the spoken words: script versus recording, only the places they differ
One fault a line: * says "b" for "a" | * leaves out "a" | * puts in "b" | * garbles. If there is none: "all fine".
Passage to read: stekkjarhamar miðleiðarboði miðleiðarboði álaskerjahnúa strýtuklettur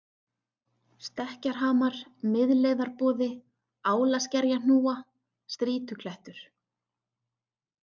* leaves out "miðleiðarboði"